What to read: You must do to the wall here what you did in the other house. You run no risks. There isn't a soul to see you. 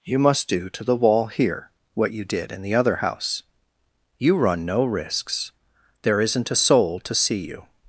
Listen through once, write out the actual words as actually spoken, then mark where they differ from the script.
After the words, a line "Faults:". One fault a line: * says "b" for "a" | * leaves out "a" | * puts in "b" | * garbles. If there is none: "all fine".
You must do to the wall here what you did in the other house. You run no risks. There isn't a soul to see you.
Faults:
all fine